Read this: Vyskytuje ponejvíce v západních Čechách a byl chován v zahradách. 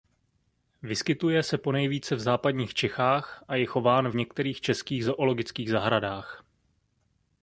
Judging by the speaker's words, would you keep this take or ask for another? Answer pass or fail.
fail